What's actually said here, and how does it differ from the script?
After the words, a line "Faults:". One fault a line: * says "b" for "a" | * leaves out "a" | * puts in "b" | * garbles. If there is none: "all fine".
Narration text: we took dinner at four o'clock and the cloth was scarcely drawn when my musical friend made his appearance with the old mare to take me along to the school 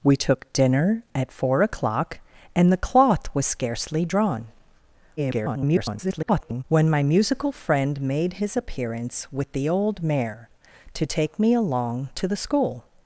we took dinner at four o'clock and the cloth was scarcely drawn [garbled] when my musical friend made his appearance with the old mare to take me along to the school
Faults:
* garbles